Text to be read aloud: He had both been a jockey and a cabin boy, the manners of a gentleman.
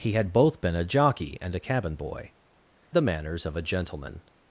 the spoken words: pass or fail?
pass